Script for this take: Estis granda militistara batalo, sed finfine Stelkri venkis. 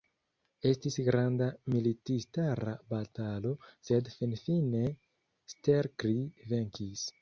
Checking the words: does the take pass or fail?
pass